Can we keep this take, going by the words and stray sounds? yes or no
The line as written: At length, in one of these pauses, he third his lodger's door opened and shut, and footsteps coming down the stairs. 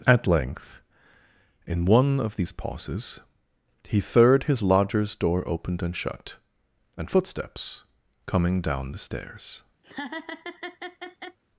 no